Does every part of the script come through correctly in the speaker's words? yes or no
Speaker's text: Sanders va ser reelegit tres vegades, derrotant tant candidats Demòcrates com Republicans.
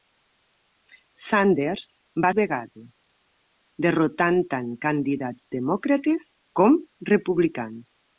no